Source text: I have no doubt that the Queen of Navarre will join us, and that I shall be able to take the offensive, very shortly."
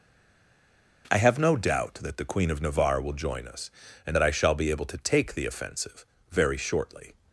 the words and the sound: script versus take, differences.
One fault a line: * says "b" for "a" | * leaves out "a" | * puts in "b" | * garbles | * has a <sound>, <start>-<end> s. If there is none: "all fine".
all fine